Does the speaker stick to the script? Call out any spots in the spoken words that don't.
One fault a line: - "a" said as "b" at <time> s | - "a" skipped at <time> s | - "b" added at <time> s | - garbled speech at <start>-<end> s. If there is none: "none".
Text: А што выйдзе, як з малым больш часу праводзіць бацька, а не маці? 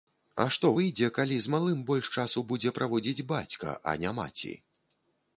- "як" said as "калі" at 1.1 s
- "будзе" added at 2.5 s